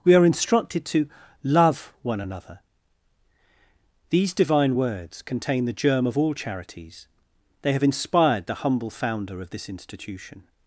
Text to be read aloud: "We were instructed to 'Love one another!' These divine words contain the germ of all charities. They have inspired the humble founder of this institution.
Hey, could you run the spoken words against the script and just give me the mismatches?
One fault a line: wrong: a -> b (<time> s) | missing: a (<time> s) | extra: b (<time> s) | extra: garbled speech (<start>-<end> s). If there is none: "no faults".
wrong: were -> are (0.1 s)